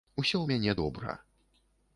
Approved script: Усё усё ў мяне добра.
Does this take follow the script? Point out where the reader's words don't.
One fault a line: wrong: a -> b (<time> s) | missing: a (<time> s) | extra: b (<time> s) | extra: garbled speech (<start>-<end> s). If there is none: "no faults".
missing: усё (0.4 s)